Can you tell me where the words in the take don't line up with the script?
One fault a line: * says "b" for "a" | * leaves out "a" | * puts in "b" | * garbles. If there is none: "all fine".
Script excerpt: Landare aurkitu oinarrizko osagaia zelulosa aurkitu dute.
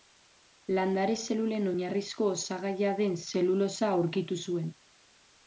* says "zelulen" for "aurkitu"
* puts in "den"
* says "zuen" for "dute"